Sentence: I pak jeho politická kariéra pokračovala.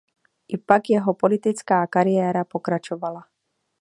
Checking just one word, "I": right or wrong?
right